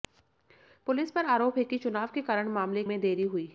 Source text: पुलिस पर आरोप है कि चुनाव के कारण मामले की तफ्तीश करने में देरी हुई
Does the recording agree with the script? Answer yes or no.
no